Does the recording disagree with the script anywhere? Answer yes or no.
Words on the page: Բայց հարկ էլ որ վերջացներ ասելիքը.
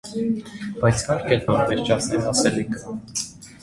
no